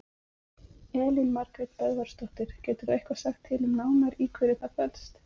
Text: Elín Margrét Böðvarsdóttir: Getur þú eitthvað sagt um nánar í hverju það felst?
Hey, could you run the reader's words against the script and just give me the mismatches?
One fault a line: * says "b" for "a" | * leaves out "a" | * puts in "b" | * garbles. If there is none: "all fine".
* puts in "til"